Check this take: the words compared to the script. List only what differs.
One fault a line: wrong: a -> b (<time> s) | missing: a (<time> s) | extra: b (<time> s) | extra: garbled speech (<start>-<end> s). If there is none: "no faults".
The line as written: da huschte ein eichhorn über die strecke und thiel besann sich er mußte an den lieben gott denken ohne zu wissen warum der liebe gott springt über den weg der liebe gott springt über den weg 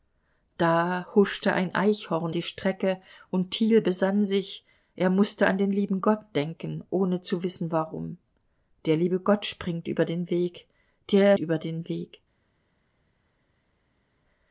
missing: über (2.3 s)
missing: liebe gott springt (11.4 s)